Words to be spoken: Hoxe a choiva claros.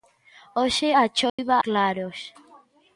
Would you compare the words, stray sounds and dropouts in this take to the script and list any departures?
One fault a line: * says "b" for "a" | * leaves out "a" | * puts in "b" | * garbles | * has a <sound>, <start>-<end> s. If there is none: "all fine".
* has a dropout, 1.3-1.4 s